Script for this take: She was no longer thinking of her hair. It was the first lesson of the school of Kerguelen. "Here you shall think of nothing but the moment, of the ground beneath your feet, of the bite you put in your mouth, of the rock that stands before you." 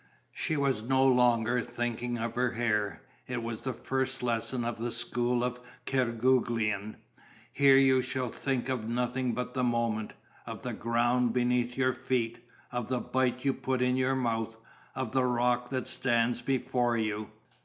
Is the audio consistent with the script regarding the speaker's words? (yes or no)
yes